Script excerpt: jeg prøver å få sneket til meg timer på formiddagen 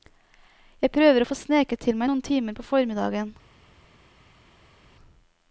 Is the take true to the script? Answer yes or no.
no